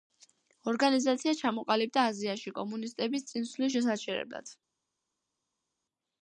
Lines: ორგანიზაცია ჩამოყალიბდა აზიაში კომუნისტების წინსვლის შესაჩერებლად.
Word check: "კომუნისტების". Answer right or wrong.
right